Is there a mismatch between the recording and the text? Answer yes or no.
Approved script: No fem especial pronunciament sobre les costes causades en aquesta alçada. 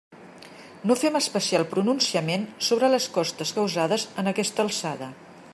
no